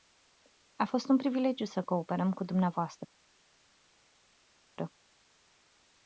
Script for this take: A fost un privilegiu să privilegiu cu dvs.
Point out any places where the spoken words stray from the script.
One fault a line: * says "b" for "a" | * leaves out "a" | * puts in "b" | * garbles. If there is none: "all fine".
* says "cooperăm" for "privilegiu"